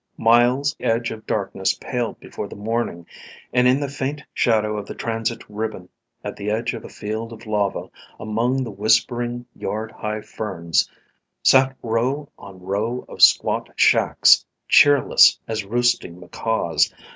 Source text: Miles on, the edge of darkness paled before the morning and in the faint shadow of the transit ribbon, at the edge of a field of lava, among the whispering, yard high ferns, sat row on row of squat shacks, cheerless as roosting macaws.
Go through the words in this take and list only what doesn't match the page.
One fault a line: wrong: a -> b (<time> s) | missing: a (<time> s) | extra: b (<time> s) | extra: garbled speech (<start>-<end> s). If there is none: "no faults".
missing: on the (0.8 s)